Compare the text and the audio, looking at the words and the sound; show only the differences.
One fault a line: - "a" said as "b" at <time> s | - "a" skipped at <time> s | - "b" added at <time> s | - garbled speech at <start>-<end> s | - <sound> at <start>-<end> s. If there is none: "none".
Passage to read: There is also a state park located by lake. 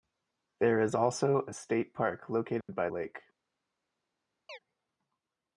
- dropout at 2.6-2.7 s
- chirp at 4.5-4.6 s